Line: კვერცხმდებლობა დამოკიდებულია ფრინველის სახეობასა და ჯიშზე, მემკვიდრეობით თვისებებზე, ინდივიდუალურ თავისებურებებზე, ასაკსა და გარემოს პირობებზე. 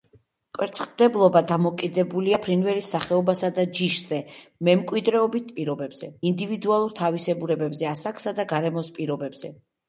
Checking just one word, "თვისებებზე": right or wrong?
wrong